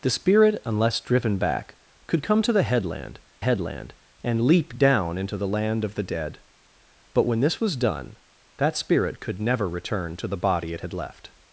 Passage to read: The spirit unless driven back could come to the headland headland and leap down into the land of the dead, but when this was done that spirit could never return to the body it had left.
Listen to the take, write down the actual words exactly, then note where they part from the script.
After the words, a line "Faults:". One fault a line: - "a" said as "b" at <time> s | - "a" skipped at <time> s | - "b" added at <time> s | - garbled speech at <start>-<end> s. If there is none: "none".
The spirit unless driven back could come to the headland headland and leap down into the land of the dead, but when this was done that spirit could never return to the body it had left.
Faults:
none